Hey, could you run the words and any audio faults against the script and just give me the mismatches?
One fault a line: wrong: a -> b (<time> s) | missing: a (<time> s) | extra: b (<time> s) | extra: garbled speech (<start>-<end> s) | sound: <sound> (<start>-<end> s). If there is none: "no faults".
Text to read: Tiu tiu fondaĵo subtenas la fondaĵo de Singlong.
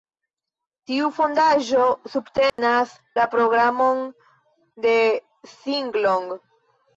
missing: tiu (1.1 s)
sound: dropout (2.5-2.6 s)
wrong: fondaĵo -> programon (3.4 s)